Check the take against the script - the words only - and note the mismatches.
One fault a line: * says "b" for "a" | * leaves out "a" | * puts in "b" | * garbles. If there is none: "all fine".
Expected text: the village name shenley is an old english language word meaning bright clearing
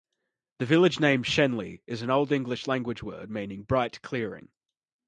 all fine